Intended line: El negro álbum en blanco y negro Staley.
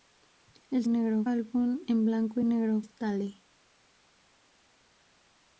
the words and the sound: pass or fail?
pass